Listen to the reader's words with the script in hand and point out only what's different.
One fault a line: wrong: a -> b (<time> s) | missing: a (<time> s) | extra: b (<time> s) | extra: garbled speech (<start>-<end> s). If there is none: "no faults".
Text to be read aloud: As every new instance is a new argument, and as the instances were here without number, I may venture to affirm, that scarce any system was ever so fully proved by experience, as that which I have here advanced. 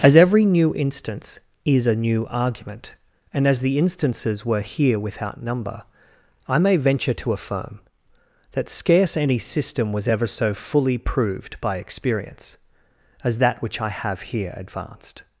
no faults